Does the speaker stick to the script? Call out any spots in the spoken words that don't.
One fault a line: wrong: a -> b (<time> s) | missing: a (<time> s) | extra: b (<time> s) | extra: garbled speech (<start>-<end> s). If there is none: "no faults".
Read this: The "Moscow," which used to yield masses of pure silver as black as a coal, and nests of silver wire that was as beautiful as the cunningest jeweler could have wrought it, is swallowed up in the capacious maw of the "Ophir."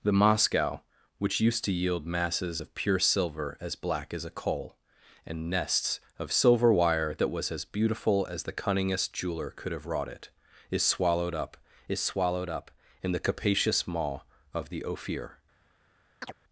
extra: is swallowed up (11.9 s)